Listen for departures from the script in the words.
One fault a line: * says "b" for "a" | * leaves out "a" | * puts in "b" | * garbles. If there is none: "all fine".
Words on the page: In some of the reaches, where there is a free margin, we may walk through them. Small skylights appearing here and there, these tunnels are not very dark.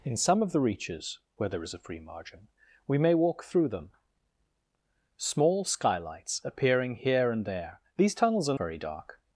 * leaves out "not"